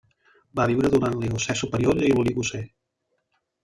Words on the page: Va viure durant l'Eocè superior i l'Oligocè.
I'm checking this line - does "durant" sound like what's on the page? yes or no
yes